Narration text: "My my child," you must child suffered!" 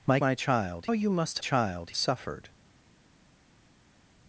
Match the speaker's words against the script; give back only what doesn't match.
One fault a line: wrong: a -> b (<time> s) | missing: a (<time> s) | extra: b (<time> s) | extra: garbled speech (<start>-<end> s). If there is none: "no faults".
no faults